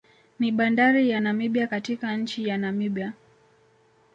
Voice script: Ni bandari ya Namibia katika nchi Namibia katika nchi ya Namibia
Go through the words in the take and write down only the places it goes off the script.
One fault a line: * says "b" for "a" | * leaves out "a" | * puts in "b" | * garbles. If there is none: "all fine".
* leaves out "Namibia katika nchi"